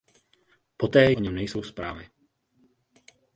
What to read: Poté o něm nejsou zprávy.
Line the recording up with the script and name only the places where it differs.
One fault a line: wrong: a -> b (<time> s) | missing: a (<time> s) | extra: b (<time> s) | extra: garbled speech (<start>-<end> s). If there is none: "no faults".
no faults